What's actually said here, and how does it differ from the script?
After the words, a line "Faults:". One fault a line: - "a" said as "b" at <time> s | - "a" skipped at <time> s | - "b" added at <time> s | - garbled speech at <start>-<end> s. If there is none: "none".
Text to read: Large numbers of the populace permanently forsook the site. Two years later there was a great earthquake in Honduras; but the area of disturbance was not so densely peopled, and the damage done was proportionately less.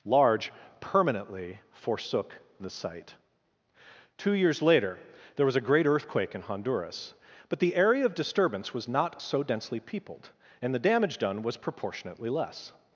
Large permanently forsook the site. Two years later there was a great earthquake in Honduras; but the area of disturbance was not so densely peopled, and the damage done was proportionately less.
Faults:
- "numbers of the populace" skipped at 0.5 s